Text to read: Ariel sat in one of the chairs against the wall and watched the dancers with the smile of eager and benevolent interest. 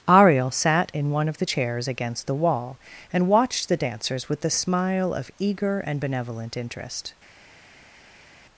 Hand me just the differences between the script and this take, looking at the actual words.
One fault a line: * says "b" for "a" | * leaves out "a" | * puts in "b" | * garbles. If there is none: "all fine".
all fine